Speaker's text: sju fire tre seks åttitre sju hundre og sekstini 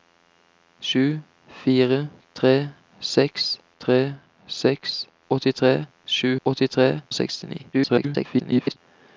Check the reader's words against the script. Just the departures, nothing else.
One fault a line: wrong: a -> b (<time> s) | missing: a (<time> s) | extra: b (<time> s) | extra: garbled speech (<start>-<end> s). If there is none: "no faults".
extra: tre seks (3.8 s)
wrong: hundre -> åttitre (6.4 s)
extra: garbled speech (7.7-8.8 s)